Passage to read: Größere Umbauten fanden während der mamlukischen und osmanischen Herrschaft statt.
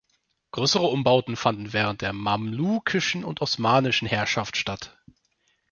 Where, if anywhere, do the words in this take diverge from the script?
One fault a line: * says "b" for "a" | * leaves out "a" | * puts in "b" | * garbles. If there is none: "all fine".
all fine